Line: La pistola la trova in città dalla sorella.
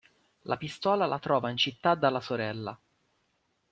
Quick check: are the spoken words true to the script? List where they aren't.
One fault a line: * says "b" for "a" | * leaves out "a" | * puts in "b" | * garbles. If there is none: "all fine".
all fine